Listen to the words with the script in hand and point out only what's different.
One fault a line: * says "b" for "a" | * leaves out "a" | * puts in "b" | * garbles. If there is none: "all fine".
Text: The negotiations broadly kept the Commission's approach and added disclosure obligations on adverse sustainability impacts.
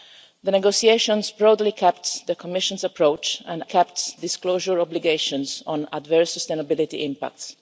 * says "kept" for "added"